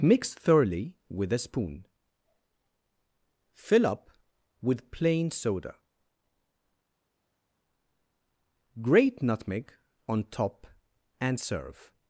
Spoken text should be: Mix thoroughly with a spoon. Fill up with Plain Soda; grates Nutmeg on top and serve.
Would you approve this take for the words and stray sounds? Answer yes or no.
no